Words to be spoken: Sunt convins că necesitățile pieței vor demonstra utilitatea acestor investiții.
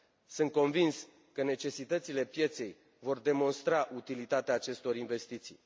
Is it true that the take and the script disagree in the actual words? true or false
false